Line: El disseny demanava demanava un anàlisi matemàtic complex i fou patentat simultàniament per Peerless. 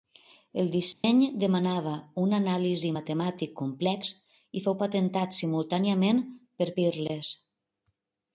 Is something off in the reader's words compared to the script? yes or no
yes